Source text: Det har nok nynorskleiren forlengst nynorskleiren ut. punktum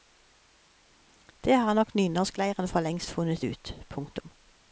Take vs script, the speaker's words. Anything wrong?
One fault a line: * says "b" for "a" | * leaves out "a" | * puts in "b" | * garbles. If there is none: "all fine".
* says "funnet" for "nynorskleiren"